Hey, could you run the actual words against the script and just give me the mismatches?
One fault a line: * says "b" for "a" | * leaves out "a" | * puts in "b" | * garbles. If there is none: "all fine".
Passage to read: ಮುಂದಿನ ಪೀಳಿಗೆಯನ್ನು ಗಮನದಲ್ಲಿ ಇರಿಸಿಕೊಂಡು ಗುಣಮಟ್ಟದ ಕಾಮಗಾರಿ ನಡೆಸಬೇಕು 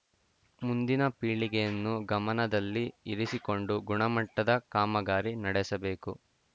all fine